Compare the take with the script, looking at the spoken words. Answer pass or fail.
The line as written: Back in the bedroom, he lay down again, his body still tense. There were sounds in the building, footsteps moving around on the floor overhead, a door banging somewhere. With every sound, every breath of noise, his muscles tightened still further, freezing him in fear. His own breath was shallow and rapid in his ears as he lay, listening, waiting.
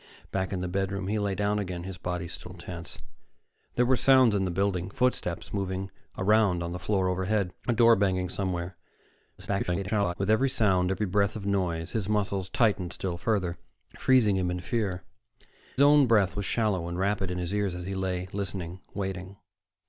fail